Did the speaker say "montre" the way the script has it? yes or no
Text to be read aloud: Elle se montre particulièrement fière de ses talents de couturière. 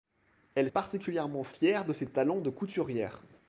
no